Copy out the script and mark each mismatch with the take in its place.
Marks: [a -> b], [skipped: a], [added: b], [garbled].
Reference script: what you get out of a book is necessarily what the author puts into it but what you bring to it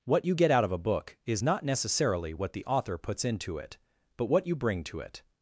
what you get out of a book is [added: not] necessarily what the author puts into it but what you bring to it